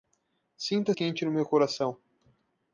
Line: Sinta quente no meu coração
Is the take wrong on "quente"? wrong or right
right